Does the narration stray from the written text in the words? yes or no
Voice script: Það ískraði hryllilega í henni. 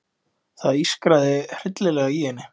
no